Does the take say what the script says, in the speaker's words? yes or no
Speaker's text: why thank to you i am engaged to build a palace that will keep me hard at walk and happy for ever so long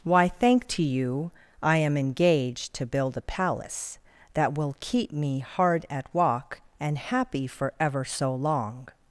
yes